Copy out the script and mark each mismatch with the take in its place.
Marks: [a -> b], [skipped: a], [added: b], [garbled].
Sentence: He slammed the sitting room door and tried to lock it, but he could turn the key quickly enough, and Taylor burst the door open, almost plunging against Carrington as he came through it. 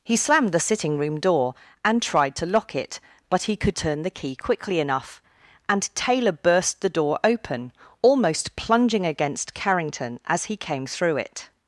He slammed the sitting room door and tried to lock it, but he could turn the key quickly enough, and Taylor burst the door open, almost plunging against Carrington as he came through it.